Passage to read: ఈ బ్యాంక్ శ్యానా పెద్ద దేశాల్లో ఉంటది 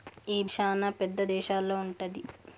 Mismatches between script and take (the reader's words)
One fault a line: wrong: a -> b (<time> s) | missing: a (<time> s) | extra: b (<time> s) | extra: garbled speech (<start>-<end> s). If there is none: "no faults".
missing: బ్యాంక్ (0.4 s)